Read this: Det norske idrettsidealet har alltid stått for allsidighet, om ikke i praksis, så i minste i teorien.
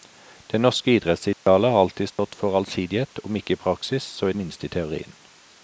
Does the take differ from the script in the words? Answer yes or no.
no